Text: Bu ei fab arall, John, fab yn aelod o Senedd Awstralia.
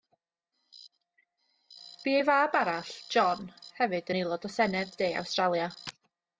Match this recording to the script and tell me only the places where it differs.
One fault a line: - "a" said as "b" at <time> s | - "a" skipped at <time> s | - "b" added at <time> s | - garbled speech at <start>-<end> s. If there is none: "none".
- "fab" said as "hefyd" at 3.8 s
- "De" added at 5.0 s